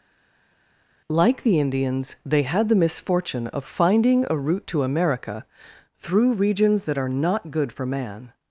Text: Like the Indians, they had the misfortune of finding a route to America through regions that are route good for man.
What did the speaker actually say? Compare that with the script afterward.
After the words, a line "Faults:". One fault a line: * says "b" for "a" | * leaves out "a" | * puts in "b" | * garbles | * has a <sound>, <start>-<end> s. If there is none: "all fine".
Like the Indians, they had the misfortune of finding a route to America through regions that are not good for man.
Faults:
* says "not" for "route"